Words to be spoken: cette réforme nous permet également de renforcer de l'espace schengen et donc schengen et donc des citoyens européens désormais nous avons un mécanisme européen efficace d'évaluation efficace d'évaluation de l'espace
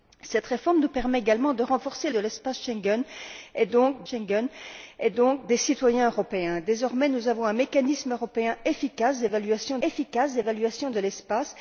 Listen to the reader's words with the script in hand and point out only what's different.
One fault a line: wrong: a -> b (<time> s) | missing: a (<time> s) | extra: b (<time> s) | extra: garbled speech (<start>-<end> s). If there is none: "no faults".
no faults